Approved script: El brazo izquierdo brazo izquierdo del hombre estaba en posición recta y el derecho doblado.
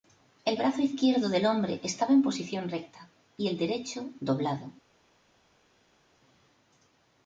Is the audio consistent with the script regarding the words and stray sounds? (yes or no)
no